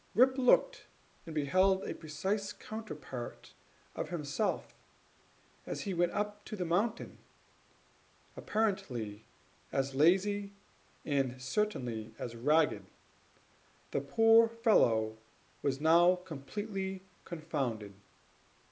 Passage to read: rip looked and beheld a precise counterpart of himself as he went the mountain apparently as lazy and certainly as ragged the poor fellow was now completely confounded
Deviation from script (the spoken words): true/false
true